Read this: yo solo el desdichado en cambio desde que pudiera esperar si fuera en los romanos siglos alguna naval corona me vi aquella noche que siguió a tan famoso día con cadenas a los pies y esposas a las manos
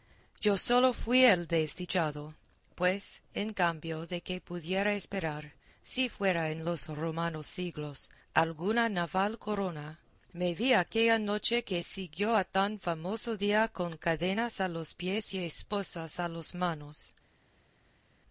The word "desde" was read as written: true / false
false